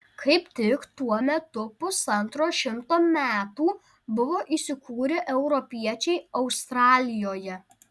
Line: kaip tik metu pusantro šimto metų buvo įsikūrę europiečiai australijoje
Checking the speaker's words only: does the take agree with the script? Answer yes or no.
no